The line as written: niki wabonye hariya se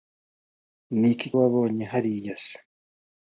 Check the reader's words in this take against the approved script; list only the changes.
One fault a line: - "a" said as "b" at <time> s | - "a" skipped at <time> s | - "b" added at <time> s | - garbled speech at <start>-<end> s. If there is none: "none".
none